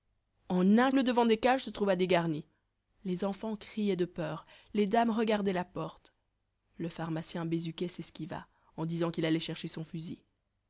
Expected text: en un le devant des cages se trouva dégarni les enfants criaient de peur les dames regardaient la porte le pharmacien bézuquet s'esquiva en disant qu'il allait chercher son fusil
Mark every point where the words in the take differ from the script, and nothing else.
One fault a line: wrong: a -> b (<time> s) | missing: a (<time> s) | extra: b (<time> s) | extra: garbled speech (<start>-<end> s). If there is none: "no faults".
no faults